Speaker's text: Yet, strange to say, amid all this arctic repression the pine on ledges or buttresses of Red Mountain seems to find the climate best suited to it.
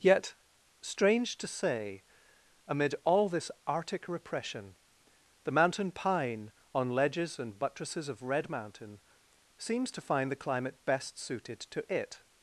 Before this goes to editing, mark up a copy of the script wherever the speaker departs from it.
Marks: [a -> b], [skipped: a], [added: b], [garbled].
Yet, strange to say, amid all this arctic repression the [added: mountain] pine on ledges [or -> and] buttresses of Red Mountain seems to find the climate best suited to it.